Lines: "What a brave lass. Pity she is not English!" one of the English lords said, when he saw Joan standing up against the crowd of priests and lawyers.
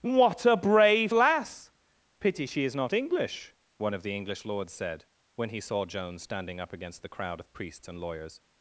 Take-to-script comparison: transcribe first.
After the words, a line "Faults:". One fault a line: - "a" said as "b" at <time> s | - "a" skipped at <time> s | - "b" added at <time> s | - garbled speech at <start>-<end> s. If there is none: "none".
"What a brave lass. Pity she is not English!" one of the English lords said, when he saw Joan standing up against the crowd of priests and lawyers.
Faults:
none